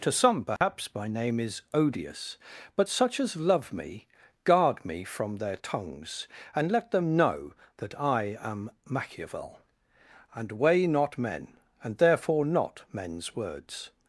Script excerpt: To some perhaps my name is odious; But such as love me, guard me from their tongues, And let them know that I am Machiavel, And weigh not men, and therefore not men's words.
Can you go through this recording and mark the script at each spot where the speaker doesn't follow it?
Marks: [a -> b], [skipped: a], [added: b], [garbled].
To some perhaps my name is odious; But such as love me, guard me from their tongues, And let them know that I am Machiavel, And weigh not men, and therefore not men's words.